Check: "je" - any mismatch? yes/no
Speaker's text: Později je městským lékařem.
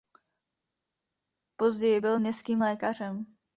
yes